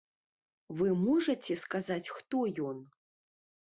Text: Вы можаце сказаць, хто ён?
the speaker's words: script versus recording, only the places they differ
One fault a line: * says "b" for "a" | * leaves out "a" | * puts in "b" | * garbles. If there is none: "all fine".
all fine